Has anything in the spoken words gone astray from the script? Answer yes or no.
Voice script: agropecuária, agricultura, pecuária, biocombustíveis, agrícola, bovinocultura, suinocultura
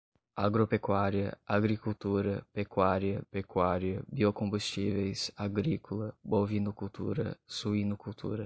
yes